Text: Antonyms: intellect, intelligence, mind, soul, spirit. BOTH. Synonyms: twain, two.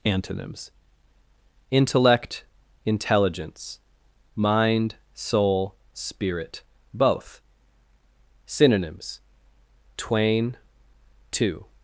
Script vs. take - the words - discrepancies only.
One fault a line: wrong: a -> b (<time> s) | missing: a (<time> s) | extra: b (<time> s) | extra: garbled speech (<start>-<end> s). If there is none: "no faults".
no faults